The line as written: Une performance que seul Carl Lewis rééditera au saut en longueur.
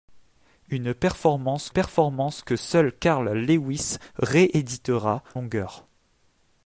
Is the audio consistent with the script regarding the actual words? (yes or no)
no